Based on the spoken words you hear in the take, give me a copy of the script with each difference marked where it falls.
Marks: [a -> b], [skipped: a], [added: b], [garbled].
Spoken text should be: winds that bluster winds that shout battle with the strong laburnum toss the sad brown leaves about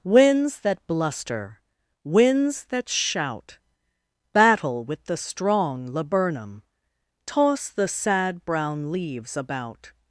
winds that bluster winds that shout battle with the strong laburnum toss the sad brown leaves about